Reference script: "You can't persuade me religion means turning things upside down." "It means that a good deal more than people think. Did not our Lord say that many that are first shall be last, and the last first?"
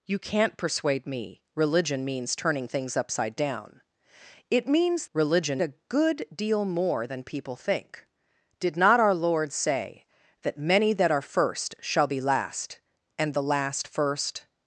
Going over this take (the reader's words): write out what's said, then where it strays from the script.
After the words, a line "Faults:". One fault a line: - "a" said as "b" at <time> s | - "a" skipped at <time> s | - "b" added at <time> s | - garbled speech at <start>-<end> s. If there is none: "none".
"You can't persuade me religion means turning things upside down." "It means religion a good deal more than people think. Did not our Lord say that many that are first shall be last, and the last first?"
Faults:
- "that" said as "religion" at 5.1 s